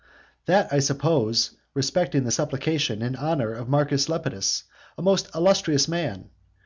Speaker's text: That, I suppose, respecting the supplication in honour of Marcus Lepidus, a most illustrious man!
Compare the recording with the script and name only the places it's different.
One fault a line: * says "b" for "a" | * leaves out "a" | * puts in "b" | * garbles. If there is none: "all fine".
all fine